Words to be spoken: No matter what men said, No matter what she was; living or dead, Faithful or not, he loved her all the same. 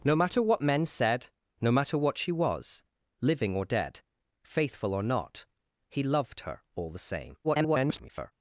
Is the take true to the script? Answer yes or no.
no